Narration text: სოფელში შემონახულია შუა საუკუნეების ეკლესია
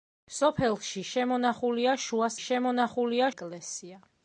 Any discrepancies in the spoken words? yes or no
yes